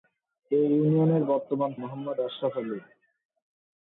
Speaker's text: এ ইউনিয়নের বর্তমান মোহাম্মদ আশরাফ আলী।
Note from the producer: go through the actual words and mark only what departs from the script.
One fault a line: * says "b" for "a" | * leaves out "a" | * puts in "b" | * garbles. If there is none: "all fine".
all fine